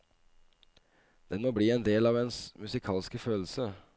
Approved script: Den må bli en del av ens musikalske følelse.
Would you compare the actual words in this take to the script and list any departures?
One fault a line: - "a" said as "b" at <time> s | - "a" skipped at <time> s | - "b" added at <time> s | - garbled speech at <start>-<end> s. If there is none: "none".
none